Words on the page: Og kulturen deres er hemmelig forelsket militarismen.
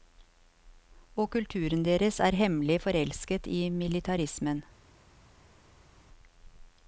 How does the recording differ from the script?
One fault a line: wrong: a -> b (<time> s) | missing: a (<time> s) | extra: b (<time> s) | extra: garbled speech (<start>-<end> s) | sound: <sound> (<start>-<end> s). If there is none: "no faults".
extra: i (3.5 s)